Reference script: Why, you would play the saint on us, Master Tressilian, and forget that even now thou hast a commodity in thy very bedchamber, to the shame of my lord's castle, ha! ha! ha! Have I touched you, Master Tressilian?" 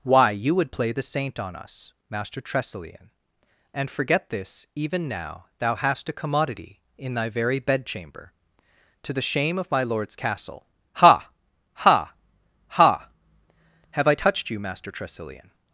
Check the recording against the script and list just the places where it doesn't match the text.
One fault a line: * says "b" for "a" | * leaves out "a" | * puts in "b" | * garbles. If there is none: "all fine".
* says "this" for "that"